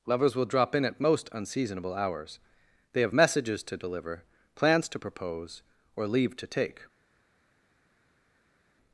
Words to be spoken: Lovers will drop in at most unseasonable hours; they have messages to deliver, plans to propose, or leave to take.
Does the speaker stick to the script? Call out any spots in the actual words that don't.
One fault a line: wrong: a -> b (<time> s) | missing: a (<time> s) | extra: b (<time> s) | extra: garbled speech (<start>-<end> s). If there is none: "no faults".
no faults